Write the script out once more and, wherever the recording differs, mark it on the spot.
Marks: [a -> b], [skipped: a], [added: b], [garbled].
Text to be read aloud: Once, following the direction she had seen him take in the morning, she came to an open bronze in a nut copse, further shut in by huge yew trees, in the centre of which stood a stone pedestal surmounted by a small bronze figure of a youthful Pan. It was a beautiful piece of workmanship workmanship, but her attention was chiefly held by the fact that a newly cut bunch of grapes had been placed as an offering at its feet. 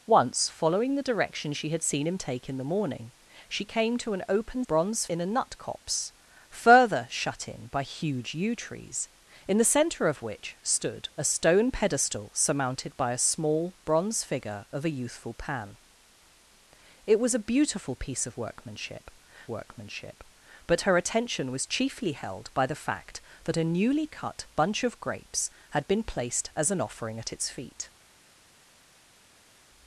Once, following the direction she had seen him take in the morning, she came to an open bronze in a nut copse, further shut in by huge yew trees, in the centre of which stood a stone pedestal surmounted by a small bronze figure of a youthful Pan. It was a beautiful piece of workmanship workmanship, but her attention was chiefly held by the fact that a newly cut bunch of grapes had been placed as an offering at its feet.